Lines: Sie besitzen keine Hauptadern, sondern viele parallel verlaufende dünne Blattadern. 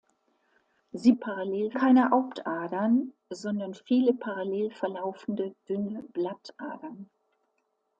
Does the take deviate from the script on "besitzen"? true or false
true